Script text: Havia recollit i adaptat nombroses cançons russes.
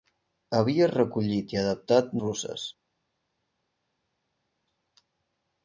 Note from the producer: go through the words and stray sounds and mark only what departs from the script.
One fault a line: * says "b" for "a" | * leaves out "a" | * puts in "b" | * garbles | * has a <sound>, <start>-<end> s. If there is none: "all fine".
* leaves out "nombroses cançons"